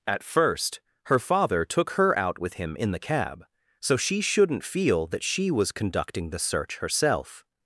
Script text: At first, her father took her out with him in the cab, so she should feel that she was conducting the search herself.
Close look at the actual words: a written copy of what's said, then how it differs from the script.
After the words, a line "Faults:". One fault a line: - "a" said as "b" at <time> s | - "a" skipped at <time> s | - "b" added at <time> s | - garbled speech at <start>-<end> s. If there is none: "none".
At first, her father took her out with him in the cab, so she shouldn't feel that she was conducting the search herself.
Faults:
- "should" said as "shouldn't" at 4.2 s